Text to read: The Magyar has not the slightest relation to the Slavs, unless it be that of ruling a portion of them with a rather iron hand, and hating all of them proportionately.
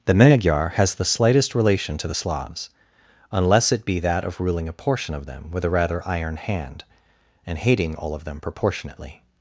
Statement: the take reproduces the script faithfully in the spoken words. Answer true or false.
false